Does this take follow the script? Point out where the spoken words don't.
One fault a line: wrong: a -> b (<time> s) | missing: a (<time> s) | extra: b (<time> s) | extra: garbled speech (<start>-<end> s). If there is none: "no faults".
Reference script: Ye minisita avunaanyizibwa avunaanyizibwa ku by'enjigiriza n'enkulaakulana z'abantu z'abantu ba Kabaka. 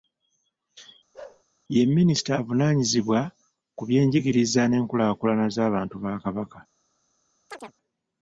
missing: avunaanyizibwa (3.2 s)
missing: z'abantu (6.0 s)